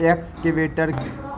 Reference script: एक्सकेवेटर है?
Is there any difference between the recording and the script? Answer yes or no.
no